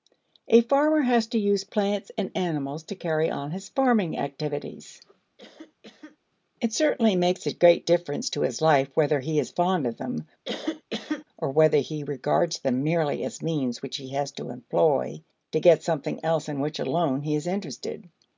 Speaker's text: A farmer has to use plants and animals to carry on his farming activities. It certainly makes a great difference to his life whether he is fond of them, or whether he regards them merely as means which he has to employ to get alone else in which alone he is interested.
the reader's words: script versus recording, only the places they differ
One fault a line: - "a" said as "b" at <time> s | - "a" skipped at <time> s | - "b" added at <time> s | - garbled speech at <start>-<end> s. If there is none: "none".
- "alone" said as "something" at 15.8 s